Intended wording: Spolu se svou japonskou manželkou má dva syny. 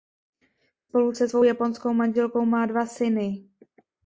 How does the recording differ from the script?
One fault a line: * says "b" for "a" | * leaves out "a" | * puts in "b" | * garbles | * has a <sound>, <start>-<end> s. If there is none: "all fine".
all fine